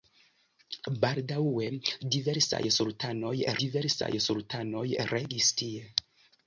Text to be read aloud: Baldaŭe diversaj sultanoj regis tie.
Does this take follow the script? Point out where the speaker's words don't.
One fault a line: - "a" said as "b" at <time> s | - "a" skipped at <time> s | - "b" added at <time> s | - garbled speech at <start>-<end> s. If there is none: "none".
- "diversaj sultanoj" added at 3.6 s